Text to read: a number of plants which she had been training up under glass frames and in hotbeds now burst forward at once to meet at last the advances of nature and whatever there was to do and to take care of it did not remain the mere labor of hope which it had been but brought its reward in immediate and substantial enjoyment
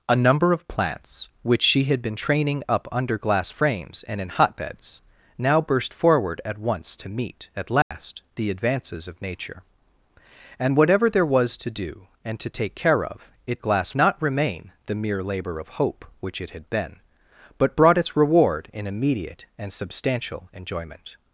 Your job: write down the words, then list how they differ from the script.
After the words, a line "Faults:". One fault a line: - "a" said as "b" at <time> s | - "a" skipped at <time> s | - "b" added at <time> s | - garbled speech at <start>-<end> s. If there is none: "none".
a number of plants which she had been training up under glass frames and in hotbeds now burst forward at once to meet at last the advances of nature and whatever there was to do and to take care of it glass not remain the mere labor of hope which it had been but brought its reward in immediate and substantial enjoyment
Faults:
- "did" said as "glass" at 13.6 s